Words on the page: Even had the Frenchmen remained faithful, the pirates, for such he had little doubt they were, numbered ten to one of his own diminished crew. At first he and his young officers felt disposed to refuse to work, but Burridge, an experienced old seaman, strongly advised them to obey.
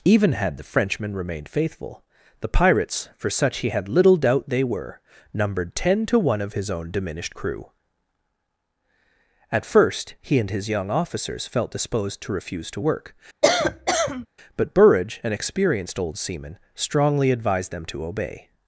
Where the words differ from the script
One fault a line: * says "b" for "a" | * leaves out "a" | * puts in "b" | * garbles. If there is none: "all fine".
all fine